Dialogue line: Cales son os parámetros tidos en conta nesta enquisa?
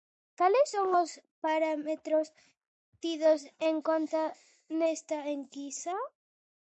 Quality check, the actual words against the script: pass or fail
pass